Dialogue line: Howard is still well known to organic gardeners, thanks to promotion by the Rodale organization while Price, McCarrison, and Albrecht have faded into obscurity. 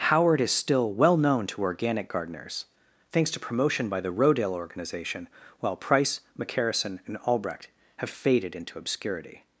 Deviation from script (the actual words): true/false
false